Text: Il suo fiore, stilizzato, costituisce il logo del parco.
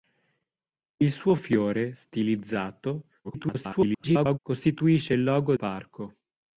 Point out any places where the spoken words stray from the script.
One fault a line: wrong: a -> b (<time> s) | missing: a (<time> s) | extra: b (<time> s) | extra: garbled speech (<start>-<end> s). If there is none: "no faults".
extra: garbled speech (3.2-4.4 s)
missing: del (5.5 s)